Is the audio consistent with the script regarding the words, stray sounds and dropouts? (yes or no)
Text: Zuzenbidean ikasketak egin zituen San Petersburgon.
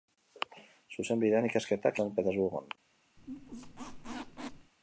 no